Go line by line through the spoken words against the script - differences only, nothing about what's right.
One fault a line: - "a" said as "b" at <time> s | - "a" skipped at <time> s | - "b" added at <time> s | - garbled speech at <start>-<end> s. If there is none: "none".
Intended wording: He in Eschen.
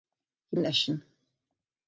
none